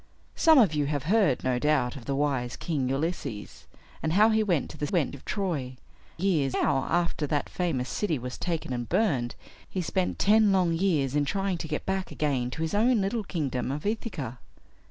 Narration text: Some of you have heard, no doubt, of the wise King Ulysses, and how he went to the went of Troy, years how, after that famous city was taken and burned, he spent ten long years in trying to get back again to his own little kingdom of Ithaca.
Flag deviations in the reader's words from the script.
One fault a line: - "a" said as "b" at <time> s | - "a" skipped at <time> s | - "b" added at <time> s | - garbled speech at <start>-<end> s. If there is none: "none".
none